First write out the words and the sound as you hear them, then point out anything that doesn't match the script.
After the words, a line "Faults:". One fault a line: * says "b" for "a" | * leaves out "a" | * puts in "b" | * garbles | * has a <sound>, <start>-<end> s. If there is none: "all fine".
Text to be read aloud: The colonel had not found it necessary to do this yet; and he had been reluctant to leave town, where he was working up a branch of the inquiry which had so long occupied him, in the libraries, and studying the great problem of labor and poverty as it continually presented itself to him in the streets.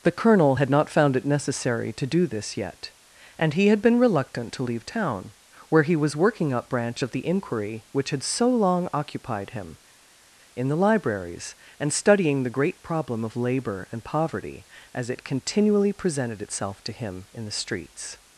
The colonel had not found it necessary to do this yet; and he had been reluctant to leave town, where he was working up branch of the inquiry which had so long occupied him, in the libraries, and studying the great problem of labor and poverty as it continually presented itself to him in the streets.
Faults:
* leaves out "a"